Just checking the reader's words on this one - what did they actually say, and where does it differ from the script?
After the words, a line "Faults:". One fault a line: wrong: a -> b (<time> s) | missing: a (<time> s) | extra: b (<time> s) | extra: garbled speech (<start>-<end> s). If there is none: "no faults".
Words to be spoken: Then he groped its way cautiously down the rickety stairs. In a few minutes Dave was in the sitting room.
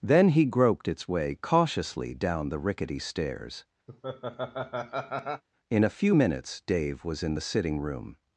Then he groped its way cautiously down the rickety stairs. In a few minutes Dave was in the sitting room.
Faults:
no faults